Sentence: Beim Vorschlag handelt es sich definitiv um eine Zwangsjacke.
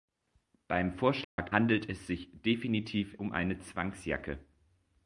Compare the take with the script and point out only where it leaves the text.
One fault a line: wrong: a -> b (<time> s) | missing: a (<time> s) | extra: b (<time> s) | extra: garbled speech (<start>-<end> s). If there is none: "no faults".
no faults